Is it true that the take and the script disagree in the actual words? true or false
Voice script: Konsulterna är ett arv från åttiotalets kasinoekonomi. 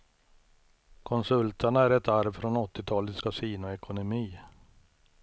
false